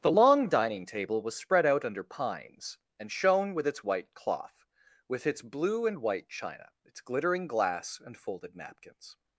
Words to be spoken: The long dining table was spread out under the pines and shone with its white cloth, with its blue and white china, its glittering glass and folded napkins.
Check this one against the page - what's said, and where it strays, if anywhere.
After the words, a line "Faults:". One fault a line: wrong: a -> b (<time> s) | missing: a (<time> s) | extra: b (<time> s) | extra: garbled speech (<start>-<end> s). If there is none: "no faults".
The long dining table was spread out under pines and shone with its white cloth, with its blue and white china, its glittering glass and folded napkins.
Faults:
missing: the (2.0 s)